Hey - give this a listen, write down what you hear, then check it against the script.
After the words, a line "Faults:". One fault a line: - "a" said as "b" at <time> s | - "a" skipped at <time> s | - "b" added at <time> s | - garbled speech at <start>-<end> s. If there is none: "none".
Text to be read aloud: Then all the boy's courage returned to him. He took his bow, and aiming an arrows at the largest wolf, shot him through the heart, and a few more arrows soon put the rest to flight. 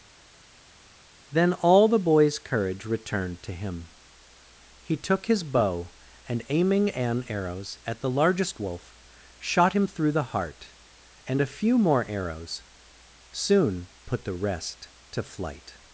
Then all the boy's courage returned to him. He took his bow, and aiming an arrows at the largest wolf, shot him through the heart, and a few more arrows soon put the rest to flight.
Faults:
none